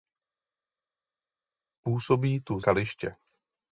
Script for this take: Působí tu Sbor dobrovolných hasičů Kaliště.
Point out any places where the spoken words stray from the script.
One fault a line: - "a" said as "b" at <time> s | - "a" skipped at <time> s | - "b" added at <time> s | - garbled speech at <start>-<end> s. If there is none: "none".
- "Sbor dobrovolných hasičů" skipped at 2.6 s